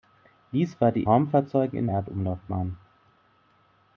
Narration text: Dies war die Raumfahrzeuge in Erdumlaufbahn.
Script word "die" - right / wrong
right